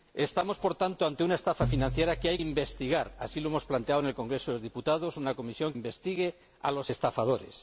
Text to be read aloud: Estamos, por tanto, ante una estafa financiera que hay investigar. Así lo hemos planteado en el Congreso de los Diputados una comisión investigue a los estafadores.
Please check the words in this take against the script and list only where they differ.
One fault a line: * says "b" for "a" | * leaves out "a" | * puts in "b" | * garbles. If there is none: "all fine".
all fine